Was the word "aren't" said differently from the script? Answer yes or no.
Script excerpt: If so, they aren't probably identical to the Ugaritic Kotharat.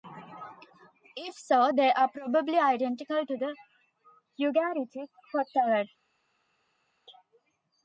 yes